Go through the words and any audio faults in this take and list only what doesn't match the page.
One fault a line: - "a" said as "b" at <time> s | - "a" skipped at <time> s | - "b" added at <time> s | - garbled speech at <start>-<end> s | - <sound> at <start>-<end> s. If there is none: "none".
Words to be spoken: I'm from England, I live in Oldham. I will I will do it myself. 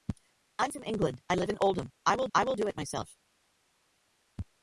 none